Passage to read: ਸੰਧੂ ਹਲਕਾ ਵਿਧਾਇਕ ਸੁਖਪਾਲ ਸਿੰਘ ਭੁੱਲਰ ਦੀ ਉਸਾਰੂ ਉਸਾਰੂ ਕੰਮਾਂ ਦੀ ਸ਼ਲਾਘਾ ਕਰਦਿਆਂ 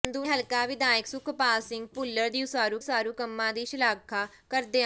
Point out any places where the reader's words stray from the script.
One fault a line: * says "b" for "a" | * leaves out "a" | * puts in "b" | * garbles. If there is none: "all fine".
all fine